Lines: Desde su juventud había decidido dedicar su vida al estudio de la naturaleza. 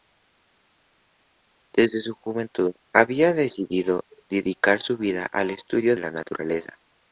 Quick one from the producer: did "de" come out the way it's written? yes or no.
no